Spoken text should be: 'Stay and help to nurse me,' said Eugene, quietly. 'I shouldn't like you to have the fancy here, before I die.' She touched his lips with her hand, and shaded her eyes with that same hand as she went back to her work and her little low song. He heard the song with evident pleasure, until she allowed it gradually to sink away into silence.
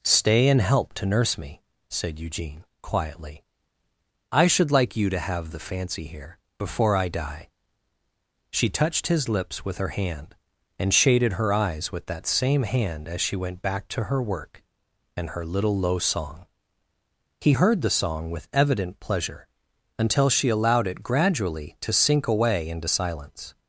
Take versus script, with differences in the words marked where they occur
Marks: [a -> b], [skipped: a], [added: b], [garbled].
'Stay and help to nurse me,' said Eugene, quietly. 'I [shouldn't -> should] like you to have the fancy here, before I die.' She touched his lips with her hand, and shaded her eyes with that same hand as she went back to her work and her little low song. He heard the song with evident pleasure, until she allowed it gradually to sink away into silence.